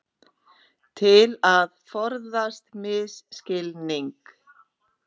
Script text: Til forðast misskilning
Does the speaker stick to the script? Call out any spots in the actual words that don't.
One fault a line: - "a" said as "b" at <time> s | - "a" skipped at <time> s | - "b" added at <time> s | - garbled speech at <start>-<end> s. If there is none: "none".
- "að" added at 1.5 s